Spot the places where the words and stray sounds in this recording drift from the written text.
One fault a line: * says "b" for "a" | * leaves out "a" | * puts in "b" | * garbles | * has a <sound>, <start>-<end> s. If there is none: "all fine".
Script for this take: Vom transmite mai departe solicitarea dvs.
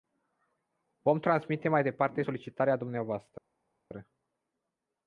all fine